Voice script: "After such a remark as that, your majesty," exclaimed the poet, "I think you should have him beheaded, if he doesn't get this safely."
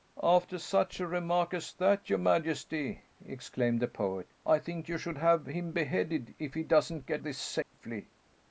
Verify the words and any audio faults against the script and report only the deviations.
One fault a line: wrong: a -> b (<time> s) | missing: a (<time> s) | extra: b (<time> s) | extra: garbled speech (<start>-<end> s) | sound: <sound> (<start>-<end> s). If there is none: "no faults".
sound: dropout (7.6-7.7 s)